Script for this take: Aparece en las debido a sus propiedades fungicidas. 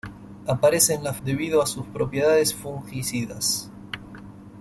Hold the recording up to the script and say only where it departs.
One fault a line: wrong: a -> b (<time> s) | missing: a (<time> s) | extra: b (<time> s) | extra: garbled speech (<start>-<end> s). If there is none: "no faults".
no faults